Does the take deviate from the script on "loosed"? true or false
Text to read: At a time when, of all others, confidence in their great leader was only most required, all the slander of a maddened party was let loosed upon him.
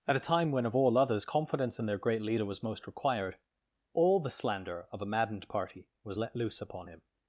true